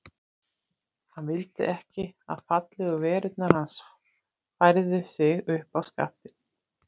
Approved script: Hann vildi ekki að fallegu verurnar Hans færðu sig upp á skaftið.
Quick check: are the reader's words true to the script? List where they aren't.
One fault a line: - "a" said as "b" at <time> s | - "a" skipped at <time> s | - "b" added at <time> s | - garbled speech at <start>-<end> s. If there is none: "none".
none